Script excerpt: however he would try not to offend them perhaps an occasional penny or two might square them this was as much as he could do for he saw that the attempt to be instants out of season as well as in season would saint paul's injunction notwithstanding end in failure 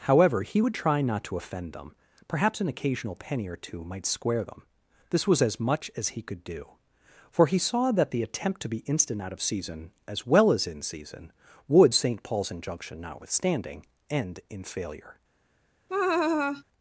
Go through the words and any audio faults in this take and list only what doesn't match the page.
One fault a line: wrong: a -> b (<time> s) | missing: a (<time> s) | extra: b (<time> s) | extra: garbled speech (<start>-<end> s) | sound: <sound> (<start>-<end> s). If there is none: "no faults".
wrong: instants -> instant (8.9 s)
sound: laugh (15.9-16.6 s)